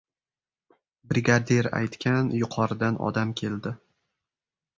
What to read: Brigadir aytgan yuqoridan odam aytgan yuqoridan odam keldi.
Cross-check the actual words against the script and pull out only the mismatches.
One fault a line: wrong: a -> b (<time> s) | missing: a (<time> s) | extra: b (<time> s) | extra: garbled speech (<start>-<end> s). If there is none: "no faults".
missing: aytgan yuqoridan odam (3.4 s)